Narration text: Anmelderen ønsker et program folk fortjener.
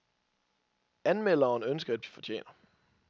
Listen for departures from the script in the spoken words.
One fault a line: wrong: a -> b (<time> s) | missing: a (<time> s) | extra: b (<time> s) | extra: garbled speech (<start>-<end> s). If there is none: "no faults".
missing: program folk (2.0 s)